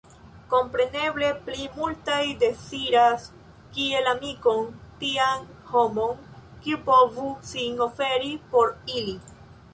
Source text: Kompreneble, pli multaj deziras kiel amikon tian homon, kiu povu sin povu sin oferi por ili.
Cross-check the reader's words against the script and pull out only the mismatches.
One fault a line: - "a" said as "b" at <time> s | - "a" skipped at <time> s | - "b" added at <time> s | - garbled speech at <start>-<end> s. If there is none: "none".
- "povu sin" skipped at 7.9 s